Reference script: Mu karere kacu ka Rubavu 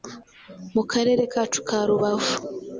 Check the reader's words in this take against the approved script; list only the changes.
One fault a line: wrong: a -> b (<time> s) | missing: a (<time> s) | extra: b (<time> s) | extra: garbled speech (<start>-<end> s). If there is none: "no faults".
no faults